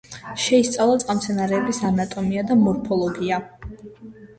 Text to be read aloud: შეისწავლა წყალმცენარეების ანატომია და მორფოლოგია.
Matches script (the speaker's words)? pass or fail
pass